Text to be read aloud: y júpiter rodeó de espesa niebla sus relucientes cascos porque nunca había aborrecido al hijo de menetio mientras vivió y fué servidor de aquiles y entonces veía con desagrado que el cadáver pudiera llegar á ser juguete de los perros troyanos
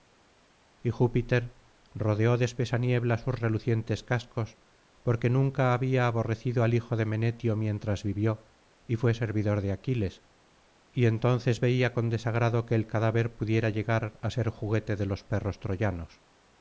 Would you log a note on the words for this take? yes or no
no